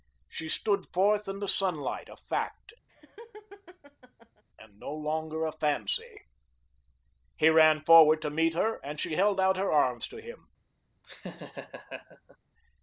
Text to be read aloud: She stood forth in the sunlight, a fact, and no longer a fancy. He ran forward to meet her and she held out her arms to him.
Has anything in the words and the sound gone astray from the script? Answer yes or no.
yes